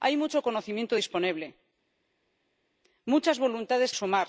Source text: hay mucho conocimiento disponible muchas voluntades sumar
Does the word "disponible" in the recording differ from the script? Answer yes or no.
no